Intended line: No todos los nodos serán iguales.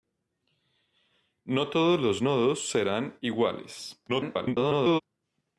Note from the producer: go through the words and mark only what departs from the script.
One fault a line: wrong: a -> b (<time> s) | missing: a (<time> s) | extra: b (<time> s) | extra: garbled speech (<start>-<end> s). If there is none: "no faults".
extra: garbled speech (4.1-5.0 s)